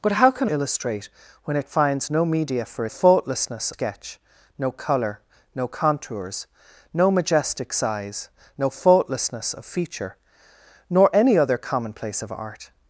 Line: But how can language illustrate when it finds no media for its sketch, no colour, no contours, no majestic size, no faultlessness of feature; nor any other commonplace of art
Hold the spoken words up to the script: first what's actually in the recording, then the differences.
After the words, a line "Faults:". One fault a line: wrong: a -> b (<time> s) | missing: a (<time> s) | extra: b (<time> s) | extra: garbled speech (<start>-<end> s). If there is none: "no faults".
But how can illustrate when it finds no media for faultlessness sketch, no colour, no contours, no majestic size, no faultlessness of feature; nor any other commonplace of art
Faults:
missing: language (0.5 s)
wrong: its -> faultlessness (2.9 s)